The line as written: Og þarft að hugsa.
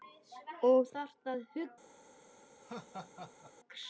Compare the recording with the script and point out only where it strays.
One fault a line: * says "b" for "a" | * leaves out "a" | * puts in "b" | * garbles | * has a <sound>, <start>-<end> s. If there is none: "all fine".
* has a laugh, 2.6-3.5 s